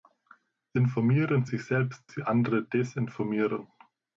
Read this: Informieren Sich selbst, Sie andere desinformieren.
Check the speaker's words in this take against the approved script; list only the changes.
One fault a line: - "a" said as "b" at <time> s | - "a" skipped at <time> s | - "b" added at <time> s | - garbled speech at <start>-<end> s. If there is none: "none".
none